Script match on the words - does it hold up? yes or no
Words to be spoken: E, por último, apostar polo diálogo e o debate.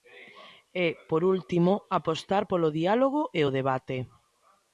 yes